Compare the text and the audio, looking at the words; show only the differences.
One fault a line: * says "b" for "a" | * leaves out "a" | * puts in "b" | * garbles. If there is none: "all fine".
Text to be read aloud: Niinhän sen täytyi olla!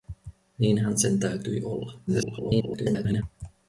* garbles